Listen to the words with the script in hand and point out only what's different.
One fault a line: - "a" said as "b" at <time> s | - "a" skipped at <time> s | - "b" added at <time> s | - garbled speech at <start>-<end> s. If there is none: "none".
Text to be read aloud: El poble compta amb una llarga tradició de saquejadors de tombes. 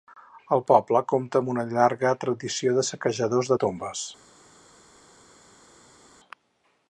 none